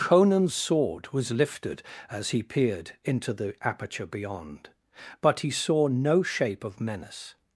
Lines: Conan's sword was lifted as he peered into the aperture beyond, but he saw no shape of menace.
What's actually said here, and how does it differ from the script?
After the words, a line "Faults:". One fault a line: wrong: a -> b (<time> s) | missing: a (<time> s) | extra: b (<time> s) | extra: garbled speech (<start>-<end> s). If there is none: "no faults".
Conan's sword was lifted as he peered into the aperture beyond, but he saw no shape of menace.
Faults:
no faults